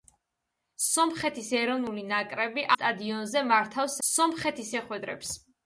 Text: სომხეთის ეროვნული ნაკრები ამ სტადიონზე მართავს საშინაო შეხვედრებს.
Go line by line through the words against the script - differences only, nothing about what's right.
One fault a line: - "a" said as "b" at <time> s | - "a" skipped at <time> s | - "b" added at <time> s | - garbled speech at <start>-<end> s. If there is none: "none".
- "ამ" skipped at 2.7 s
- "საშინაო" said as "სომხეთის" at 4.1 s